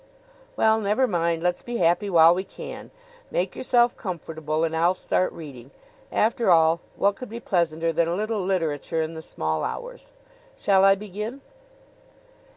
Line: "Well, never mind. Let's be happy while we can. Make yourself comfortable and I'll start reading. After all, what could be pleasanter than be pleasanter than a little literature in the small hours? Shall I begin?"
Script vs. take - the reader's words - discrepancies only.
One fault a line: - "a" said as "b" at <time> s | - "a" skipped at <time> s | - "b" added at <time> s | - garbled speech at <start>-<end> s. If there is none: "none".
- "be pleasanter than" skipped at 8.1 s